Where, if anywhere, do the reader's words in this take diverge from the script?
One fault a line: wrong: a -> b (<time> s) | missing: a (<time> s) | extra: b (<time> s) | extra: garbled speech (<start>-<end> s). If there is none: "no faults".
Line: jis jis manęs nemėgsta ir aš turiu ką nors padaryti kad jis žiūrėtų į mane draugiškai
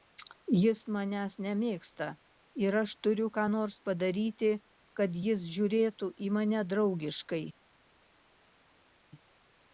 missing: jis (0.8 s)